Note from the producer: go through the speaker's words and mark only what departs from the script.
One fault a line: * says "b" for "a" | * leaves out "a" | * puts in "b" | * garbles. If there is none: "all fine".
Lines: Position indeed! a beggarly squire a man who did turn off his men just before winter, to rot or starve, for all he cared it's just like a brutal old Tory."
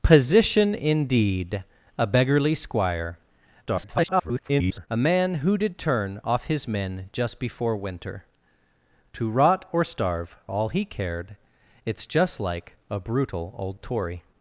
* garbles
* leaves out "for"